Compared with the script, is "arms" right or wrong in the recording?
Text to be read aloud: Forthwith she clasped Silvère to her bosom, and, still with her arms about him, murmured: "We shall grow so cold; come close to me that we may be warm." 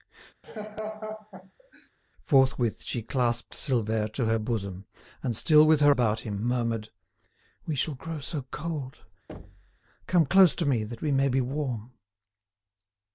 wrong